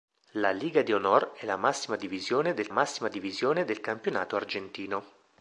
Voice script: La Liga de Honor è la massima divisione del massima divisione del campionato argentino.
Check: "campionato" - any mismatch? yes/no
no